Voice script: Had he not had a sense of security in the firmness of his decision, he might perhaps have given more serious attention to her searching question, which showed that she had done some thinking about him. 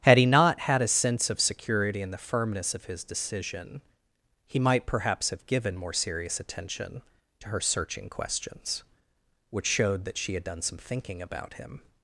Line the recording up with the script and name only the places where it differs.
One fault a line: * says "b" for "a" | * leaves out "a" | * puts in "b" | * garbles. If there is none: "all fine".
* says "questions" for "question"